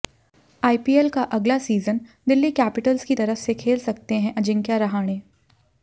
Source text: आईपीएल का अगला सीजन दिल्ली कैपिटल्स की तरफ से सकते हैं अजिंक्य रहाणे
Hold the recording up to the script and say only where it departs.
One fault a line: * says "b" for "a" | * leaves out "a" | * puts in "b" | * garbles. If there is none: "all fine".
* puts in "खेल"